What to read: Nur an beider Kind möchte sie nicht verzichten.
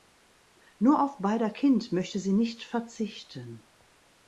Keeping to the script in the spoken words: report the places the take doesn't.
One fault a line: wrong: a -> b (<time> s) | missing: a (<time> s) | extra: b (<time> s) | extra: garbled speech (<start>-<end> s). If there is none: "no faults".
wrong: an -> auf (1.0 s)